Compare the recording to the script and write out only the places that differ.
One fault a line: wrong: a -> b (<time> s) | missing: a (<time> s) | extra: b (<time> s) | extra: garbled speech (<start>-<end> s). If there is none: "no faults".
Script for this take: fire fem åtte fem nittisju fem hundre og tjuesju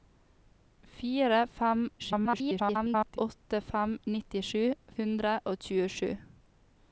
extra: garbled speech (2.0-3.2 s)
missing: fem (4.6 s)